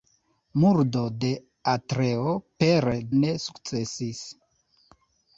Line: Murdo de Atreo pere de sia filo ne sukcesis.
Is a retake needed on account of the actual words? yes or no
yes